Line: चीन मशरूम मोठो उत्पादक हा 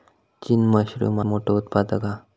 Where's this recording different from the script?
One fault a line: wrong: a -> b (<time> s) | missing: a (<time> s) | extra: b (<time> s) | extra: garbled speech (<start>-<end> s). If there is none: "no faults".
no faults